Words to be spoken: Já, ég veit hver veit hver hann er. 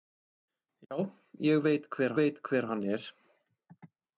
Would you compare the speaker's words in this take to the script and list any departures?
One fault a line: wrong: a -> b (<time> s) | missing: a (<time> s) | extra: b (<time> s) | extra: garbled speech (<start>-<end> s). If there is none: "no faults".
no faults